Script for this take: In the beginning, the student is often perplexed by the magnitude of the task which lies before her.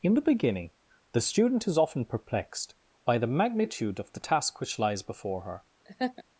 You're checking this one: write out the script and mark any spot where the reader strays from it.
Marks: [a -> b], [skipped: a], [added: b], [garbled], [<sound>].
In the beginning, the student is often perplexed by the magnitude of the task which lies before her. [laugh]